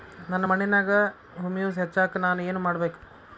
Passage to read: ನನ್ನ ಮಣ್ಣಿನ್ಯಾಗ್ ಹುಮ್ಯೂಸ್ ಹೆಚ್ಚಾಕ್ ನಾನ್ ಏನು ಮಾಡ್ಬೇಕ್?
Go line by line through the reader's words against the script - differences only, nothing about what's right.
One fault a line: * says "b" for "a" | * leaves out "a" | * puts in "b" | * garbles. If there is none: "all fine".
all fine